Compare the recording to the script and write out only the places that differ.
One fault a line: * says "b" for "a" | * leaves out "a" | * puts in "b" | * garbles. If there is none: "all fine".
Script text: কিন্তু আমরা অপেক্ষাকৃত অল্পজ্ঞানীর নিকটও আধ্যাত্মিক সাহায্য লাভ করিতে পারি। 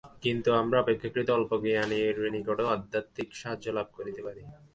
all fine